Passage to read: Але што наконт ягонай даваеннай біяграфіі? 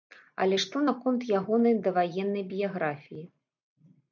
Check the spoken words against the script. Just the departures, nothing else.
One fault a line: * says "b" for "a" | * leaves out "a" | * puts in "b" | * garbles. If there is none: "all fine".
all fine